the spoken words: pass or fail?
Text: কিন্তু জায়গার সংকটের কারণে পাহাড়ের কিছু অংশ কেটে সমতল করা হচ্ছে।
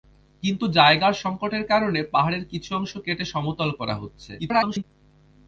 fail